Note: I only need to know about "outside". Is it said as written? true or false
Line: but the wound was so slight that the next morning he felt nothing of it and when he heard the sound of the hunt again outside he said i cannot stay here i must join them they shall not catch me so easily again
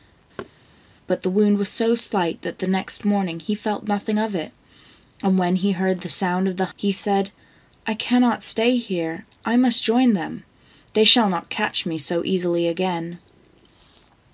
false